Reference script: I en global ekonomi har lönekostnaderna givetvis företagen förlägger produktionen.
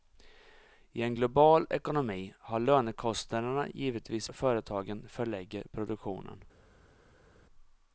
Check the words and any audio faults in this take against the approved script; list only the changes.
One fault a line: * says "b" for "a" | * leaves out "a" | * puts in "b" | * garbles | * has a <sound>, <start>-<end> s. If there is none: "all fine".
all fine